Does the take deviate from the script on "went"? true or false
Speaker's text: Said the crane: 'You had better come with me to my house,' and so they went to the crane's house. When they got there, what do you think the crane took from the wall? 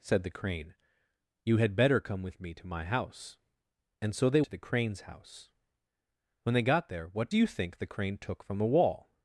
true